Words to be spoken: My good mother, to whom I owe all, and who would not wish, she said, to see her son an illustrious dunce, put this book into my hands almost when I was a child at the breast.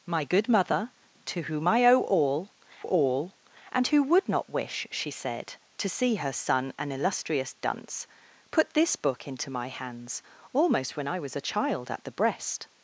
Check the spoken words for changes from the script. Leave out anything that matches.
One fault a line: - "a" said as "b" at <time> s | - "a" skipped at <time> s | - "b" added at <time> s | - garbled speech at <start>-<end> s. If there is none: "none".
- "all" added at 2.8 s